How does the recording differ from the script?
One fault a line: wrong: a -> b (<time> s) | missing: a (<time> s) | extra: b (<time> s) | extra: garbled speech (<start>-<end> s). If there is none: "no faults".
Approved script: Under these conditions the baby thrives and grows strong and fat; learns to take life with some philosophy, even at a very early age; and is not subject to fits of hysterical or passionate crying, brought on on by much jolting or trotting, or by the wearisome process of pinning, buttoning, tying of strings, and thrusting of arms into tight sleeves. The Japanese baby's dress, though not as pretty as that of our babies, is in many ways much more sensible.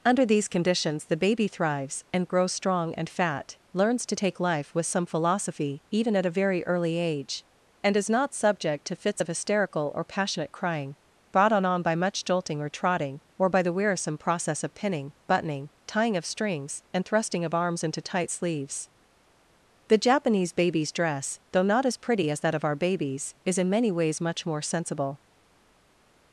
no faults